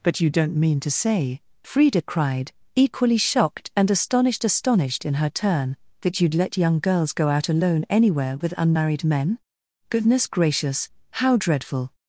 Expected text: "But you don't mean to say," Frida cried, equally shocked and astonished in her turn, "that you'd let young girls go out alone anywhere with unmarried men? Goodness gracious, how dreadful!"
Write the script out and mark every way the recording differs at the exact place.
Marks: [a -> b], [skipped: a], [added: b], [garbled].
"But you don't mean to say," Frida cried, equally shocked and astonished [added: astonished] in her turn, "that you'd let young girls go out alone anywhere with unmarried men? Goodness gracious, how dreadful!"